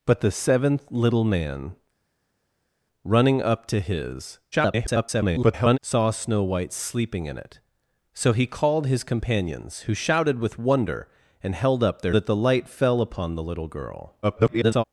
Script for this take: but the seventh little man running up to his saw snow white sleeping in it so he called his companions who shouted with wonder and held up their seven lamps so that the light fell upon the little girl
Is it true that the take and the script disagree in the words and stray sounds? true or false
true